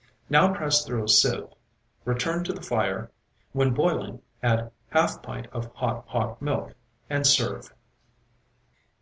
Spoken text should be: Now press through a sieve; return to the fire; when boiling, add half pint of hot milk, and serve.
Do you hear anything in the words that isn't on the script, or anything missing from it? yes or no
yes